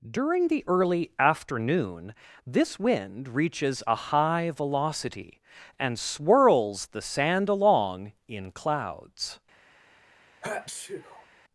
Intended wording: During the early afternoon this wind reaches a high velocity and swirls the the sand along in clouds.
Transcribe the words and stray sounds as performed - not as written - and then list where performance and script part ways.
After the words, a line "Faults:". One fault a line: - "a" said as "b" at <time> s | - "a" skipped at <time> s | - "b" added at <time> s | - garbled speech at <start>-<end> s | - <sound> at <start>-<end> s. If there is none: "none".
During the early afternoon this wind reaches a high velocity and swirls the sand along in clouds.
Faults:
- "the" skipped at 7.0 s
- sneeze at 10.4-11.3 s